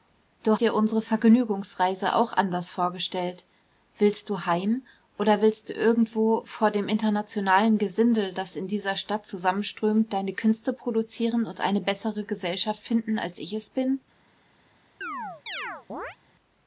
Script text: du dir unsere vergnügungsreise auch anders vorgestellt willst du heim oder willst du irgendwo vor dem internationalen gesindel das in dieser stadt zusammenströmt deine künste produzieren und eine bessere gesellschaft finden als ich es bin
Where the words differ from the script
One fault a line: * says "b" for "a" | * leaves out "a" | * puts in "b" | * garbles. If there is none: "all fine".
all fine